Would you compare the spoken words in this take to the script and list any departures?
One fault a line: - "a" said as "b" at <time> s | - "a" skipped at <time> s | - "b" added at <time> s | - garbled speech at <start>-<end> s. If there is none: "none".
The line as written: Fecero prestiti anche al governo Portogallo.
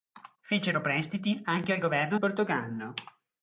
none